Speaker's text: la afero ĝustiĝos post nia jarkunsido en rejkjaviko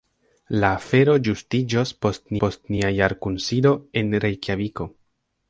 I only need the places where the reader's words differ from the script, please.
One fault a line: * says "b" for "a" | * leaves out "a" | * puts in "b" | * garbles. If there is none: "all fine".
* puts in "post"